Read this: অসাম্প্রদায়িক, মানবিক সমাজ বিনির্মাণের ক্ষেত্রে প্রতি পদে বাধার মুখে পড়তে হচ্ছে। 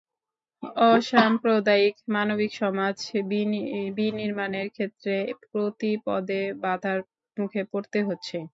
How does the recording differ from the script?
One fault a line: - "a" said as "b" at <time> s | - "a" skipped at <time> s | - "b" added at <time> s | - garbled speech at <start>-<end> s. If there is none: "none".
none